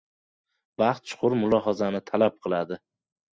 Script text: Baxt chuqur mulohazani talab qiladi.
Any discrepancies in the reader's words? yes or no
no